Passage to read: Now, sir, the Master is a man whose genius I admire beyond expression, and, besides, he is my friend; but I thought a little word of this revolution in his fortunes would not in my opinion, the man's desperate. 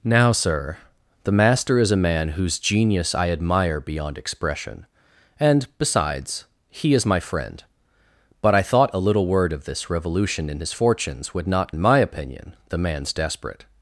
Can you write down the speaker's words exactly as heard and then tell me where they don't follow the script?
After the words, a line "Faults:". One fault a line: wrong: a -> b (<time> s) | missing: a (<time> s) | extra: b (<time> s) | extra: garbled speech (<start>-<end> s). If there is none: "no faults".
Now, sir, the Master is a man whose genius I admire beyond expression, and, besides, he is my friend; but I thought a little word of this revolution in his fortunes would not in my opinion, the man's desperate.
Faults:
no faults